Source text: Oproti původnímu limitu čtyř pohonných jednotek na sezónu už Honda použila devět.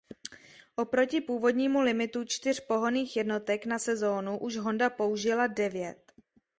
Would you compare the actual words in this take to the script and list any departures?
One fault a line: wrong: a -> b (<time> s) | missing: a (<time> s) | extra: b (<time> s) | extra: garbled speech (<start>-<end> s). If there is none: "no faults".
no faults